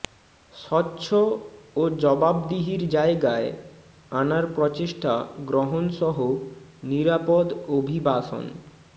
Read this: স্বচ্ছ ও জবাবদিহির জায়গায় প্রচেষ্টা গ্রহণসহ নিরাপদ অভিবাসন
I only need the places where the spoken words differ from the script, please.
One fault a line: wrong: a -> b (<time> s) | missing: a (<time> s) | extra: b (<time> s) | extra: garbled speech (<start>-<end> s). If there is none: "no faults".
extra: আনার (4.1 s)